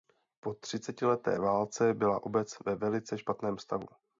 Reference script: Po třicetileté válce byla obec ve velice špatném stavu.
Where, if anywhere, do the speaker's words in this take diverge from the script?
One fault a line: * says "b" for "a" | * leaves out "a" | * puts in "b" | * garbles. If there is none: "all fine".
all fine